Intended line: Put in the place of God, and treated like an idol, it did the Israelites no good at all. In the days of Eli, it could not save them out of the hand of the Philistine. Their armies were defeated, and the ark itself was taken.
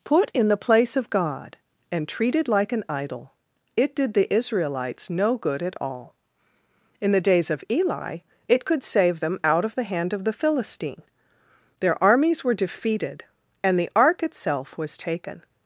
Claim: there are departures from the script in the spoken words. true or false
true